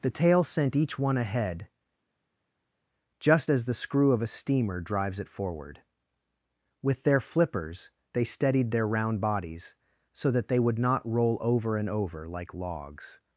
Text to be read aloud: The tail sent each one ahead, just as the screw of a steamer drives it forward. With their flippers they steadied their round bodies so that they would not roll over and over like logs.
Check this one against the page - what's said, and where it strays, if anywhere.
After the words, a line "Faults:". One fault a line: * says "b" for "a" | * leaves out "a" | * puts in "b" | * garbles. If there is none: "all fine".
The tail sent each one ahead, just as the screw of a steamer drives it forward. With their flippers they steadied their round bodies so that they would not roll over and over like logs.
Faults:
all fine